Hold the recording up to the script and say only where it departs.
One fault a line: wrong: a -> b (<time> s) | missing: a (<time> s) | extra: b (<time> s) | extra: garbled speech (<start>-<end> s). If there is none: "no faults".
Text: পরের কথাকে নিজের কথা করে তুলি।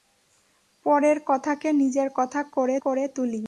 extra: করে (2.8 s)